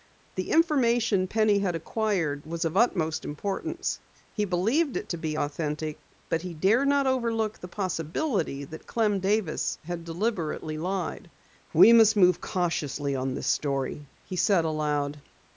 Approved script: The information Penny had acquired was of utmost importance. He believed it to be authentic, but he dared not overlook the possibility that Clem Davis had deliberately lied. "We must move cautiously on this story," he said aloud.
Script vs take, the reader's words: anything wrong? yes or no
no